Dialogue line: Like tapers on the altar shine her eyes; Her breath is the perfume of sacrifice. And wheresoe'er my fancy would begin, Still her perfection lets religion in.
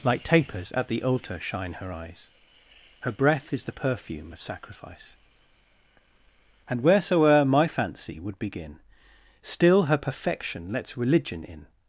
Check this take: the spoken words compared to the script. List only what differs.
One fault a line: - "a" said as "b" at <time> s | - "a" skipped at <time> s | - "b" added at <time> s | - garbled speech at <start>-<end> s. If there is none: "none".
- "on" said as "at" at 0.7 s